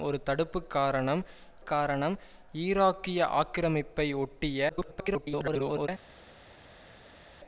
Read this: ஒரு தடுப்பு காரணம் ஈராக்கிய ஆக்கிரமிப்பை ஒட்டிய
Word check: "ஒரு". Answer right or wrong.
right